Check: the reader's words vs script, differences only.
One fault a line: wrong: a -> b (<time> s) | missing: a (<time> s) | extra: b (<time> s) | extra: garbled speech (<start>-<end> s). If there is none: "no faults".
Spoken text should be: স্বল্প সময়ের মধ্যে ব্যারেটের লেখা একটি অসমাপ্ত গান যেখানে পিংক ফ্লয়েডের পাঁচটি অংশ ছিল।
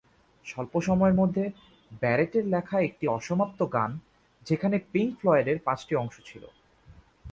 no faults